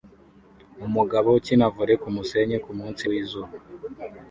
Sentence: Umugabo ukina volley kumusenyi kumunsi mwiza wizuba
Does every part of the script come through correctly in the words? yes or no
no